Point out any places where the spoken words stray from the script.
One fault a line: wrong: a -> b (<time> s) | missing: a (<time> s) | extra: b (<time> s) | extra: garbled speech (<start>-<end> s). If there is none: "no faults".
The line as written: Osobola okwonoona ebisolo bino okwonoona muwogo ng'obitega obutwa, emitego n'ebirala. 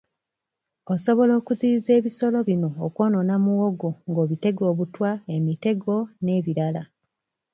wrong: okwonoona -> okuziyiza (1.4 s)